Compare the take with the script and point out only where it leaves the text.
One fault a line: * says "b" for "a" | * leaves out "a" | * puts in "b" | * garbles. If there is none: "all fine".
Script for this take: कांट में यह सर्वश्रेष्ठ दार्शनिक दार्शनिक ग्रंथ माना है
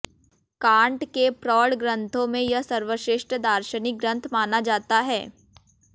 * puts in "के प्रौढ़ ग्रंथों"
* leaves out "दार्शनिक"
* puts in "जाता"